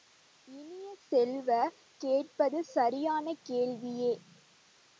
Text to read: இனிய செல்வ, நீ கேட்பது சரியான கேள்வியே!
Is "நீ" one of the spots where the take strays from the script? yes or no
yes